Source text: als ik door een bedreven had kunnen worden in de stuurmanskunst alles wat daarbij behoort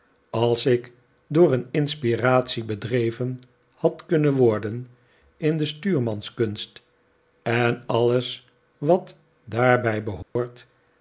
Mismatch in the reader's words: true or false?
true